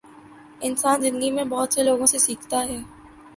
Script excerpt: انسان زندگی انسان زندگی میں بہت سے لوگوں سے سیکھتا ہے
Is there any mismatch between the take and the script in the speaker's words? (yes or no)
yes